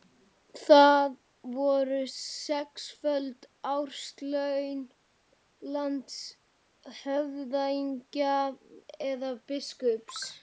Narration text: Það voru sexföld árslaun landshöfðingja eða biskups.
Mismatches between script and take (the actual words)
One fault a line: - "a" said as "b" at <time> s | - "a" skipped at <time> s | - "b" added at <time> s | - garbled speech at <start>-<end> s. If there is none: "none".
none